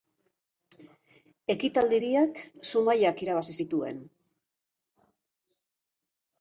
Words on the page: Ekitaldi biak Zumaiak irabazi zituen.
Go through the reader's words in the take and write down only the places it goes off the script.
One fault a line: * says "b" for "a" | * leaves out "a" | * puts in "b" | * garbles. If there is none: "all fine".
all fine